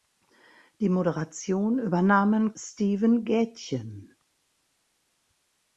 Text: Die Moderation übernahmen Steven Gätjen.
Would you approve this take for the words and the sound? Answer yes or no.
yes